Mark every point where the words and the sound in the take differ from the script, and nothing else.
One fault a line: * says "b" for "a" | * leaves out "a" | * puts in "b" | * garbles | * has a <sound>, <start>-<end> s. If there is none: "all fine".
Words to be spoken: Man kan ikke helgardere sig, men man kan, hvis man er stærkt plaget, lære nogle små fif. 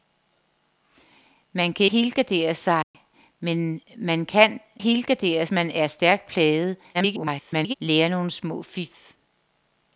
* leaves out "ikke"
* has a dropout, 2.8-2.9 s
* says "helgardere" for "hvis"
* garbles